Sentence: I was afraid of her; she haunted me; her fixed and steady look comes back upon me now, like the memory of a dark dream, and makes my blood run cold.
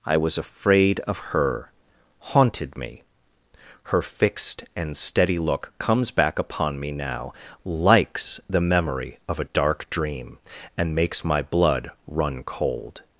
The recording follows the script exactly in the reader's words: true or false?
false